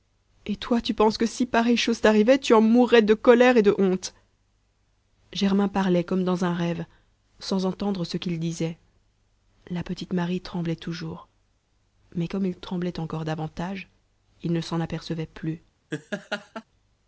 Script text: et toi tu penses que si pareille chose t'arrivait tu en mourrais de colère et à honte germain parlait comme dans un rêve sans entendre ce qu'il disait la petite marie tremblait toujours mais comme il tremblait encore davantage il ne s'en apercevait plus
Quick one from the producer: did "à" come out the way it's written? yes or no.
no